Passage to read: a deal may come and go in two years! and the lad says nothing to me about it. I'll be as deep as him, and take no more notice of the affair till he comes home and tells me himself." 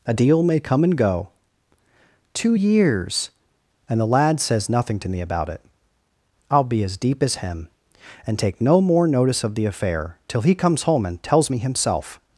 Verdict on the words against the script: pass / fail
fail